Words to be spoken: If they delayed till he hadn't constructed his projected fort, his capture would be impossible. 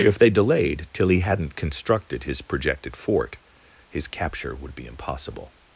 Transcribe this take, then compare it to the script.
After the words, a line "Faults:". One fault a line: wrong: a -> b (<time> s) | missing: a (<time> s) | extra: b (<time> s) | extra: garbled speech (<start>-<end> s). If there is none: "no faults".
If they delayed till he hadn't constructed his projected fort, his capture would be impossible.
Faults:
no faults